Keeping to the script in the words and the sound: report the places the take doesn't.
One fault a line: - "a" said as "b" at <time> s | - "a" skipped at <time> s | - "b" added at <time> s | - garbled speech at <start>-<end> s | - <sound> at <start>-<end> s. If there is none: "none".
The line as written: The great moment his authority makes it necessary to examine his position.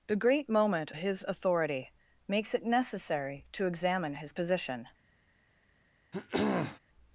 - throat clearing at 6.1-6.8 s